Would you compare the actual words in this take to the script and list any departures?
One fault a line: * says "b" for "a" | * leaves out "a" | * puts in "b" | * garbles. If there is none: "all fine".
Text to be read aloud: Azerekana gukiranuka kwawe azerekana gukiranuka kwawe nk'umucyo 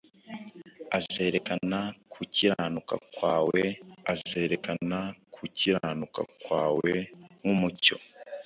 all fine